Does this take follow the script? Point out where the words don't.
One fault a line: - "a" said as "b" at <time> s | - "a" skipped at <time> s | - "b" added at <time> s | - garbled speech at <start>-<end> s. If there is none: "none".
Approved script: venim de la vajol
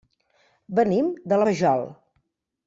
none